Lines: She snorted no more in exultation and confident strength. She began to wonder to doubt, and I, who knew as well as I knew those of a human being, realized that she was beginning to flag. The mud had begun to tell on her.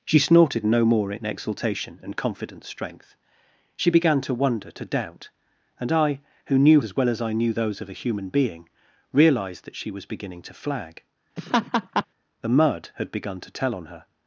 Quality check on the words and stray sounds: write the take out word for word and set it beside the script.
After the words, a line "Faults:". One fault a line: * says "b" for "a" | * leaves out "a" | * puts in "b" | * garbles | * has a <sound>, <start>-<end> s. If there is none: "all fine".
She snorted no more in exultation and confident strength. She began to wonder to doubt, and I, who knew as well as I knew those of a human being, realized that she was beginning to flag. The mud had begun to tell on her.
Faults:
* has a laugh, 11.4-12.1 s